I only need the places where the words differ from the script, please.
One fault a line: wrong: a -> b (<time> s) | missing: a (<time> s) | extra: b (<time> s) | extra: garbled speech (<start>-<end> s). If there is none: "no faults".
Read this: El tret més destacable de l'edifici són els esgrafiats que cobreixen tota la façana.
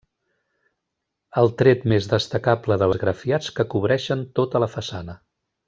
missing: l'edifici són els (2.9 s)